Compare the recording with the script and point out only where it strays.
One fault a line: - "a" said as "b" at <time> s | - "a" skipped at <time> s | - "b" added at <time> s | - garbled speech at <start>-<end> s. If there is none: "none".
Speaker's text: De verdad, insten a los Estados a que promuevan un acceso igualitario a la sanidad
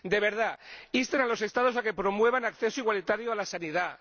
none